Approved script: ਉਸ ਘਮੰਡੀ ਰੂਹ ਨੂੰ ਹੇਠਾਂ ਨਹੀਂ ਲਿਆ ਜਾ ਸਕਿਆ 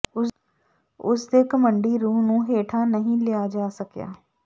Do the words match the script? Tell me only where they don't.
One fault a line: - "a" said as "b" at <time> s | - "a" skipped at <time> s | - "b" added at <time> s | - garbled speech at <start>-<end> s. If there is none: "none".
- "ਦੇ" added at 1.3 s